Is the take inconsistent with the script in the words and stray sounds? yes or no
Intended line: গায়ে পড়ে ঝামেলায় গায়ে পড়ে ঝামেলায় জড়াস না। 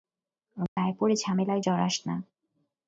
yes